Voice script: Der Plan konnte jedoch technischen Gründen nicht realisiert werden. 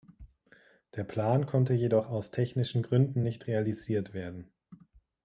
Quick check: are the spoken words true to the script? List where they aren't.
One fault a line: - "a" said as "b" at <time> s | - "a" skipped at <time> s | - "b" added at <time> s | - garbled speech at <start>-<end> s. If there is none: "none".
- "aus" added at 2.1 s